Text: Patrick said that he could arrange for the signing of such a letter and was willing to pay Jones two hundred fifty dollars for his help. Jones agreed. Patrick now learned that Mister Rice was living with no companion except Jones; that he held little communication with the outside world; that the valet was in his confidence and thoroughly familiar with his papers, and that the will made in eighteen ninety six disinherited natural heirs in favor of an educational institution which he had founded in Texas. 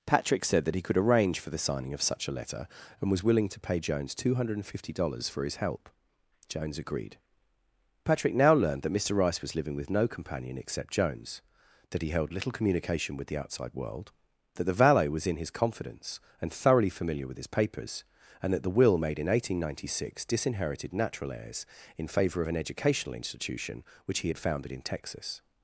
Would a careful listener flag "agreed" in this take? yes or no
no